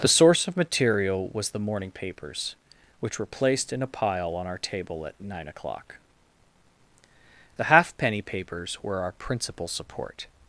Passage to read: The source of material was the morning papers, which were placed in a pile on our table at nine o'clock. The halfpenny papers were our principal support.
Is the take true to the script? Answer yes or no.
yes